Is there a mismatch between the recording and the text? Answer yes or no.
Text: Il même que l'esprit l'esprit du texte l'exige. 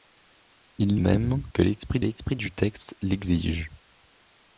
no